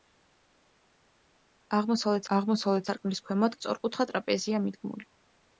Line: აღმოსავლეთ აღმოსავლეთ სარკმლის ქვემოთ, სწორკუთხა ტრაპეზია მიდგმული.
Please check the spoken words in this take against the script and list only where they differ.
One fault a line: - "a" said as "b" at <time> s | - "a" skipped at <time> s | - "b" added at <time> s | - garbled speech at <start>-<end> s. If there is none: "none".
none